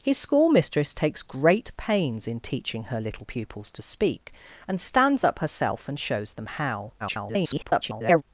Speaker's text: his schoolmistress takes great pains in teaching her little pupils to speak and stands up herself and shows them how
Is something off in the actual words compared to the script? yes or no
yes